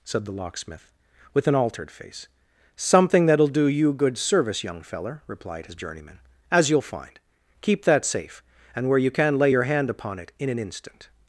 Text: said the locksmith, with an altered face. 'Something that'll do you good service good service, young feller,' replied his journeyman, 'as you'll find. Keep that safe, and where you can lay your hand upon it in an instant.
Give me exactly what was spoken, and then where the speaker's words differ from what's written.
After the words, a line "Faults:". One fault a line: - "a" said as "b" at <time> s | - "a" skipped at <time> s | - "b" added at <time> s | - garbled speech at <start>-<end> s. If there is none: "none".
said the locksmith, with an altered face. 'Something that'll do you good service, young feller,' replied his journeyman, 'as you'll find. Keep that safe, and where you can lay your hand upon it in an instant.
Faults:
- "good service" skipped at 4.6 s